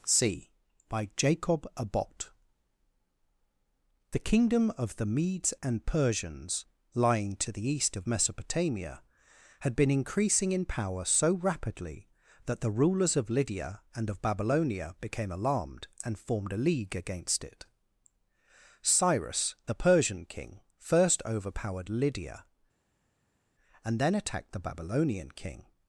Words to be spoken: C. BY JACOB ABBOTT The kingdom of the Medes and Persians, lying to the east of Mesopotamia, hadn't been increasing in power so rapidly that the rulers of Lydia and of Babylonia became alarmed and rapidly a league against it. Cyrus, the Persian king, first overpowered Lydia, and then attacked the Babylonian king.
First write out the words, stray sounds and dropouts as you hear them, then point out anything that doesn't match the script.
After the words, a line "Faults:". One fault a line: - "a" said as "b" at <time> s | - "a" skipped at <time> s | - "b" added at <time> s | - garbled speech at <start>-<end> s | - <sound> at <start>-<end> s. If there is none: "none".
C. BY JACOB ABBOTT The kingdom of the Medes and Persians, lying to the east of Mesopotamia, had been increasing in power so rapidly that the rulers of Lydia and of Babylonia became alarmed and formed a league against it. Cyrus, the Persian king, first overpowered Lydia, and then attacked the Babylonian king.
Faults:
- "hadn't" said as "had" at 9.6 s
- "rapidly" said as "formed" at 16.2 s